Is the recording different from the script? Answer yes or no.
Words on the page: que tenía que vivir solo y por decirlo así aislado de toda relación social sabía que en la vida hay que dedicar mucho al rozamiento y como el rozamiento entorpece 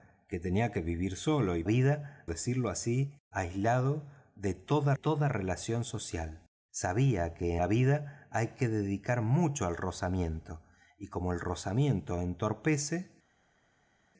yes